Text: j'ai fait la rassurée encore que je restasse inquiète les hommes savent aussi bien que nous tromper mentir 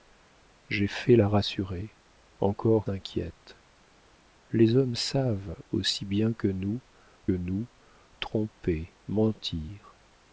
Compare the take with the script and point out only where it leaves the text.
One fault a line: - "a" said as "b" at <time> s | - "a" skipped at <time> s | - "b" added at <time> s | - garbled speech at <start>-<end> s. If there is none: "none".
- "que je restasse" skipped at 2.9 s
- "nous" added at 7.3 s